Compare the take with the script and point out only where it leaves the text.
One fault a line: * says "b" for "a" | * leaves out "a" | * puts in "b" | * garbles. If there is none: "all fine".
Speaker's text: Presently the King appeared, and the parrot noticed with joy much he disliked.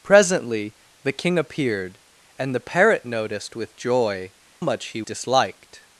all fine